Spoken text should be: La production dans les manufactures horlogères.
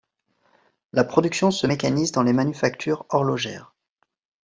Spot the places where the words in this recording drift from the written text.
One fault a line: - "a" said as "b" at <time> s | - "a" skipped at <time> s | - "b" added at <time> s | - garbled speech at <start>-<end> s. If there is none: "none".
- "se mécanise" added at 1.5 s